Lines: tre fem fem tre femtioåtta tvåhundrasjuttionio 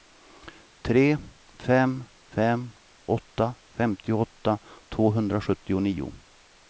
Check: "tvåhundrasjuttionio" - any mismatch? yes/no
no